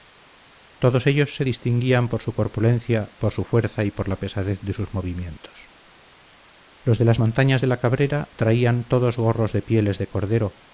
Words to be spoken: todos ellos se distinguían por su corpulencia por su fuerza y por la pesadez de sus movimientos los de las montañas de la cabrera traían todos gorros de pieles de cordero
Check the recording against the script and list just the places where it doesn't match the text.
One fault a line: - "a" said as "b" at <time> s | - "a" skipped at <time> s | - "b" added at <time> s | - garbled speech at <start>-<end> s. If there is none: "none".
none